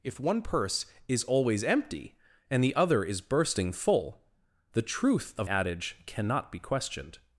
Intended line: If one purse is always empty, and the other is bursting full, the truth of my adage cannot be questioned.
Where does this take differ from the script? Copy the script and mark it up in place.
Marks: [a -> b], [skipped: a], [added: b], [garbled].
If one purse is always empty, and the other is bursting full, the truth of [skipped: my] adage cannot be questioned.